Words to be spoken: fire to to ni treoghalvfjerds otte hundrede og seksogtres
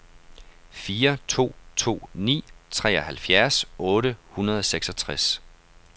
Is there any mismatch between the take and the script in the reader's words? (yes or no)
no